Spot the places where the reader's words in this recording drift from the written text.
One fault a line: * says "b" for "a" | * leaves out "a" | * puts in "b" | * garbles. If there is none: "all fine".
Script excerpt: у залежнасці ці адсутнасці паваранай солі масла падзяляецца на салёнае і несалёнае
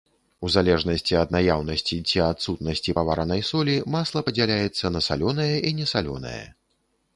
* puts in "ад наяўнасці"